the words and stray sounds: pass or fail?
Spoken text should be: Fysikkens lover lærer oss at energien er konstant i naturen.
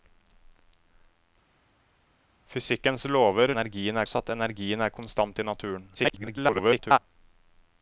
fail